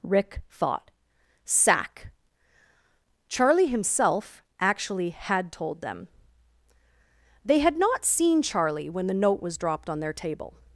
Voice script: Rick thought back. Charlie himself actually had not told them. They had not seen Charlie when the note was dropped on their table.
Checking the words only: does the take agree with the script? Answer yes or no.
no